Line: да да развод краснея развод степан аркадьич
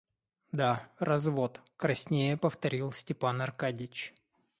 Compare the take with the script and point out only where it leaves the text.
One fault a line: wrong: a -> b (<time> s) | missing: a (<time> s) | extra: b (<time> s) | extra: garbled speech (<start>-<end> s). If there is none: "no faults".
missing: да (0.9 s)
wrong: развод -> повторил (2.3 s)